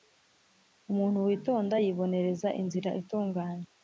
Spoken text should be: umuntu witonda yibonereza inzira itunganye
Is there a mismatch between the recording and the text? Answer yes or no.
no